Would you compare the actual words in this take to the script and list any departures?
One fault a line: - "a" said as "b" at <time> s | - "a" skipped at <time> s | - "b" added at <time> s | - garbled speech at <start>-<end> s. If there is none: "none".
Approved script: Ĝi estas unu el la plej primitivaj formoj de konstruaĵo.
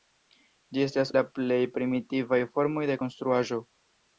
- "unu el" skipped at 1.1 s